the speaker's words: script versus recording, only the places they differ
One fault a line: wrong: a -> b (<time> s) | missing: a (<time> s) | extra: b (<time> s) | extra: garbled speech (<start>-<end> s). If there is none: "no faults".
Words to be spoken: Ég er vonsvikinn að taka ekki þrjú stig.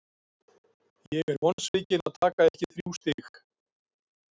no faults